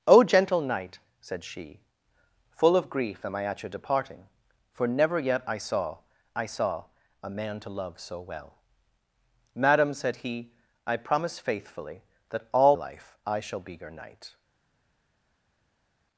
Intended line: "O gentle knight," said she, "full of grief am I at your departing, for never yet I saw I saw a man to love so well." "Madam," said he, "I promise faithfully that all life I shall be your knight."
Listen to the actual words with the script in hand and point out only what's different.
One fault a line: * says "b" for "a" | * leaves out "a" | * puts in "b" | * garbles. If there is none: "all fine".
all fine